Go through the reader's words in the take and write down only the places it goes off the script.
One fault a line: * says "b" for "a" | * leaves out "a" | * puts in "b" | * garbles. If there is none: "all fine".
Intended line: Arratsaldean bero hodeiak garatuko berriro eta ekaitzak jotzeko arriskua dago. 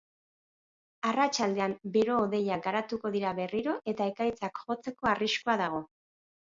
* puts in "dira"